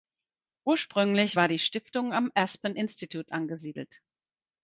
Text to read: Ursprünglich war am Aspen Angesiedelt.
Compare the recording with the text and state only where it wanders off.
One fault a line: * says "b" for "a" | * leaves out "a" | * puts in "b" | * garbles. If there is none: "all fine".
* puts in "die Stiftung"
* puts in "Institute"